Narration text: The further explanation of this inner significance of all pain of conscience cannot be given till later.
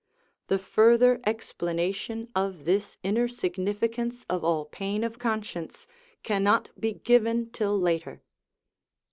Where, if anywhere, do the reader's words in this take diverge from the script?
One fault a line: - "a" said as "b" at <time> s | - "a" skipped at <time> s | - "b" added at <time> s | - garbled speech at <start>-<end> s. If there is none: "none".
none